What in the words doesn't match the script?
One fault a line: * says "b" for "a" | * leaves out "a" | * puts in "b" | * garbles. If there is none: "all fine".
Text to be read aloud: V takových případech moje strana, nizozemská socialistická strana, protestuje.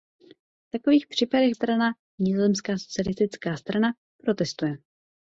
* leaves out "moje"